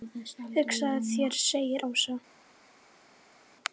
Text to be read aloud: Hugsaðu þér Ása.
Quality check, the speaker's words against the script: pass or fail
fail